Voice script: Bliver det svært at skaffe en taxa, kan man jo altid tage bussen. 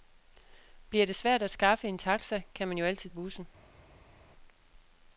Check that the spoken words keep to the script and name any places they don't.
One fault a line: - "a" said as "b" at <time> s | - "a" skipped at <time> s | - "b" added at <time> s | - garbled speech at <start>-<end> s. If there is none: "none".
- "tage" skipped at 3.1 s